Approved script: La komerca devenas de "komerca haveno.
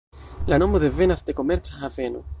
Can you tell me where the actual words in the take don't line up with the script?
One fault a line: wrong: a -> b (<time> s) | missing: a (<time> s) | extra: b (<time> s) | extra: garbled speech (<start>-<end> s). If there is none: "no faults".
wrong: komerca -> nomo (0.5 s)